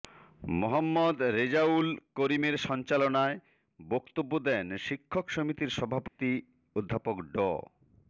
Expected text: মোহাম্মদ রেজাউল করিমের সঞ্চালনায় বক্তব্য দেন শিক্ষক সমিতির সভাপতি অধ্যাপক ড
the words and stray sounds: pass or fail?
fail